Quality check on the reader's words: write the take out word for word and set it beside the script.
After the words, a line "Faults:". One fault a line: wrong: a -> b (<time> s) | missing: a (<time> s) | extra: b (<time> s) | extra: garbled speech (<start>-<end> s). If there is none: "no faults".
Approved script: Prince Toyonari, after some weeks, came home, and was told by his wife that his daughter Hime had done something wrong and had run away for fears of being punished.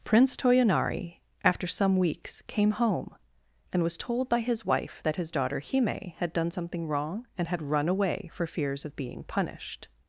Prince Toyonari, after some weeks, came home, and was told by his wife that his daughter Hime had done something wrong and had run away for fears of being punished.
Faults:
no faults